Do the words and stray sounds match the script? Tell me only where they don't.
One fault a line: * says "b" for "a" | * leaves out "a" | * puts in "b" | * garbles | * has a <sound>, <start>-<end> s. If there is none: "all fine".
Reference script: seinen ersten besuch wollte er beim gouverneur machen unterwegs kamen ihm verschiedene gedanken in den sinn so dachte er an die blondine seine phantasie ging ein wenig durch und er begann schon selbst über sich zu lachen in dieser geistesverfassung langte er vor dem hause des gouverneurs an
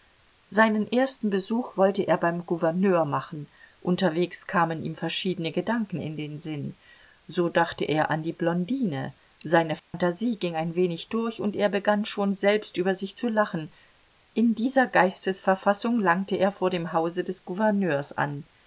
* has a dropout, 9.8-9.9 s